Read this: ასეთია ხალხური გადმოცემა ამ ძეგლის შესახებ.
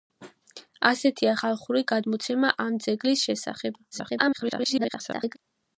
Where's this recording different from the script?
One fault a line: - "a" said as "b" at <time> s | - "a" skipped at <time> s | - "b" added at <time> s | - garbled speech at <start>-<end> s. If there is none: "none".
- garbled speech at 3.9-5.4 s